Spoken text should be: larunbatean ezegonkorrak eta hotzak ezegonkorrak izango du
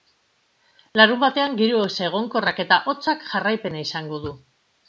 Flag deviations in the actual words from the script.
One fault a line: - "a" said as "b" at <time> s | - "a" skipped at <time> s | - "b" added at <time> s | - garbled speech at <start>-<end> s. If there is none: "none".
- "giro" added at 1.6 s
- "ezegonkorrak" said as "jarraipena" at 3.3 s